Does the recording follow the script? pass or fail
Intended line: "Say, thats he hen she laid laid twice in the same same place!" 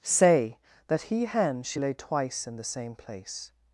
fail